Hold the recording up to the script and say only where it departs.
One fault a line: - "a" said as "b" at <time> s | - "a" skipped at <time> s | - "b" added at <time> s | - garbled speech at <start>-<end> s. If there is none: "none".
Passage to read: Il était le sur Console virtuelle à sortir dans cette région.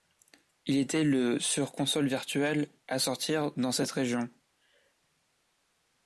none